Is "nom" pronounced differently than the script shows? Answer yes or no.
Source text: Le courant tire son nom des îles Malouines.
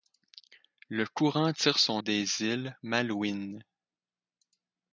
yes